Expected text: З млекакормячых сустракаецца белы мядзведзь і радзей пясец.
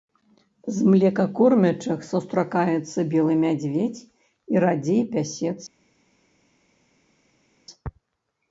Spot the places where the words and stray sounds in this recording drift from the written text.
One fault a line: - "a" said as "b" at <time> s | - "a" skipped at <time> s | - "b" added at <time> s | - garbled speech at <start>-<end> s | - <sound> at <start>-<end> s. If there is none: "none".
none